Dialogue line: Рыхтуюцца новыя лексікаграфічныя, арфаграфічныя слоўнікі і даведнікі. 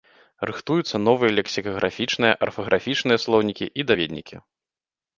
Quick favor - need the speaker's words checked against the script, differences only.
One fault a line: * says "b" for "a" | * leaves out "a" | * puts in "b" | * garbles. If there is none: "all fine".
all fine